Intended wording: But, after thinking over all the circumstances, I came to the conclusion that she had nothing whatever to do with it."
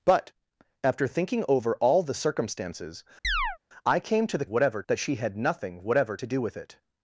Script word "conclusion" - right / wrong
wrong